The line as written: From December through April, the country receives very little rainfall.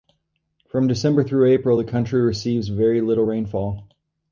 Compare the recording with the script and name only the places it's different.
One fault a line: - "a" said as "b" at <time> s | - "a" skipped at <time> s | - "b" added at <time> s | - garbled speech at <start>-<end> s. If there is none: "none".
none